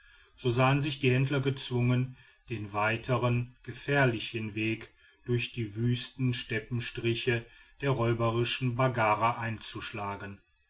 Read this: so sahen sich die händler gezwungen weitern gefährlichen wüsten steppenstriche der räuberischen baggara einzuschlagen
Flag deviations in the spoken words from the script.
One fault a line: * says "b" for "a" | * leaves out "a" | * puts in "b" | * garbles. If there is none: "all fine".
* puts in "den"
* puts in "weg durch die"